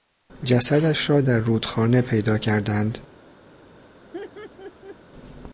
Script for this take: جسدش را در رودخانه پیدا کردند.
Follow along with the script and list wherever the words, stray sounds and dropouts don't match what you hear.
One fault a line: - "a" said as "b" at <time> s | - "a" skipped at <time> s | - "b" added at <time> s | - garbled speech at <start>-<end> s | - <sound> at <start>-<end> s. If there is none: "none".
- laugh at 4.1-5.0 s